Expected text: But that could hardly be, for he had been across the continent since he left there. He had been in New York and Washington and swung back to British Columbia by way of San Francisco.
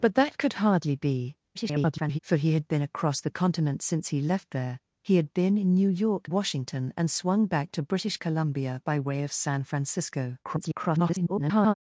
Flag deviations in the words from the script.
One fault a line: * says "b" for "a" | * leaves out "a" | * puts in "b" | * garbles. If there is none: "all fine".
* garbles
* leaves out "and"
* garbles